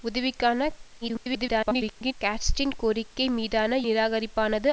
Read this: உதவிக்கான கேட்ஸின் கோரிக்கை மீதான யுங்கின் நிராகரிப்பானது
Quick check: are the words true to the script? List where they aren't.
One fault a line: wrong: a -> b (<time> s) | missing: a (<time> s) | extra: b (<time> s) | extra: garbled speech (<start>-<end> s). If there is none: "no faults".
extra: garbled speech (1.0-2.1 s)
missing: யுங்கின் (3.8 s)